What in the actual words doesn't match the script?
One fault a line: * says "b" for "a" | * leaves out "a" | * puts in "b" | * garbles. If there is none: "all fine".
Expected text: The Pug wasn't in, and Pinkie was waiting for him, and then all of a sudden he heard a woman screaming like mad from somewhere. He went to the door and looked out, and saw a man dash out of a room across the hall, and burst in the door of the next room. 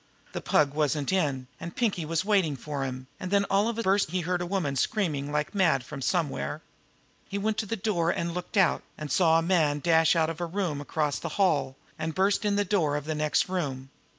* says "burst" for "sudden"